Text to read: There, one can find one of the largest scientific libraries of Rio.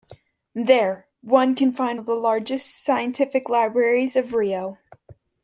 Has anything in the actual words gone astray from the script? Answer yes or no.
yes